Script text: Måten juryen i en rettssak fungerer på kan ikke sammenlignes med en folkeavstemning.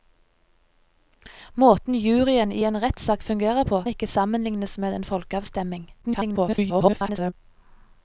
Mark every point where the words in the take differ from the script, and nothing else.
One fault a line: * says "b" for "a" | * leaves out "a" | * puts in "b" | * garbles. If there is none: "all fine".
* leaves out "kan"
* garbles